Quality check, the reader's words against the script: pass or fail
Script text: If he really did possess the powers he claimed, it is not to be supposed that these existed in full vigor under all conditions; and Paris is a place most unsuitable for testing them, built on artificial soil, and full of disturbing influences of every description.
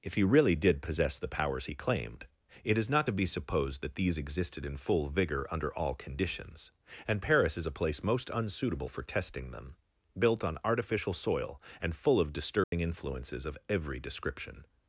pass